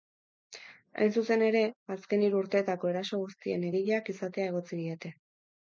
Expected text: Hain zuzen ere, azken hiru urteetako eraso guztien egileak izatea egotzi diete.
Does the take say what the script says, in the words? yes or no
yes